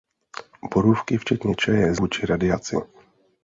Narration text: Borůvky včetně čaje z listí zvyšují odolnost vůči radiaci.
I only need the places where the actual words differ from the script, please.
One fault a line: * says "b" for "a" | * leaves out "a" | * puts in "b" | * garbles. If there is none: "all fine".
* leaves out "listí zvyšují odolnost"